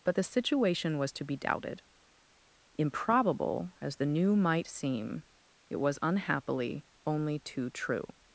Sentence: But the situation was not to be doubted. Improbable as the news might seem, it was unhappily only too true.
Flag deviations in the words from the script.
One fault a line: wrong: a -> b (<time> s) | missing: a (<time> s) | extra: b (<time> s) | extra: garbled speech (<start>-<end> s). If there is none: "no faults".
missing: not (1.1 s)
wrong: news -> new (4.1 s)